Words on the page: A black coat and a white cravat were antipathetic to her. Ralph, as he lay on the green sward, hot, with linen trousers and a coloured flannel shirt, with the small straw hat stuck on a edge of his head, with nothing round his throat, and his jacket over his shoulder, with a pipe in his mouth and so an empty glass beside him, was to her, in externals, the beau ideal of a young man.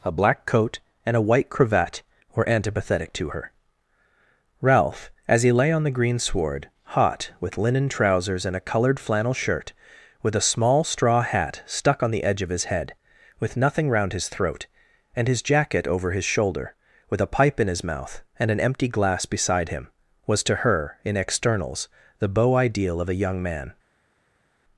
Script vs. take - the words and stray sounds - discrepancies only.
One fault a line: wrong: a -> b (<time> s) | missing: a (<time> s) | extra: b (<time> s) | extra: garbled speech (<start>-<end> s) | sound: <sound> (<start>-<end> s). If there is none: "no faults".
wrong: the -> a (10.3 s)
wrong: a -> the (12.1 s)
missing: so (18.5 s)